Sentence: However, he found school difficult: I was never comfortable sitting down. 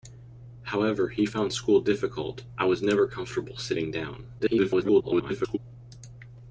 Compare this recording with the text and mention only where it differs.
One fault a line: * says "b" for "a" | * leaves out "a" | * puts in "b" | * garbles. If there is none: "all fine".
* garbles